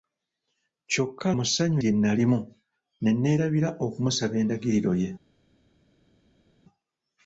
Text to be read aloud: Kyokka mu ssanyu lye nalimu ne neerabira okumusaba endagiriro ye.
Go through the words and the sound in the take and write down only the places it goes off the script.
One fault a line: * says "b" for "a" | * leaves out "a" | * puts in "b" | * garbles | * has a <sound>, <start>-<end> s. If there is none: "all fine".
all fine